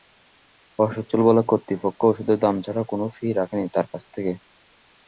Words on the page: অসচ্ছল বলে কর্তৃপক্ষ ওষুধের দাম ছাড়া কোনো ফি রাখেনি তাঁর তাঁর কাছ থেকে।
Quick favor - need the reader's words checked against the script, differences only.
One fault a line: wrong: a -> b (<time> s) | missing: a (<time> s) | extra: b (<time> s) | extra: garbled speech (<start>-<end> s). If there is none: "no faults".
missing: তাঁর (3.9 s)